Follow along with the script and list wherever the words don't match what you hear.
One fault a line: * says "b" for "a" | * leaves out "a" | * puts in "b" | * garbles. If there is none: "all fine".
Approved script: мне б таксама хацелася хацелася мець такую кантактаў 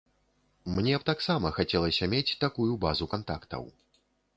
* leaves out "хацелася"
* puts in "базу"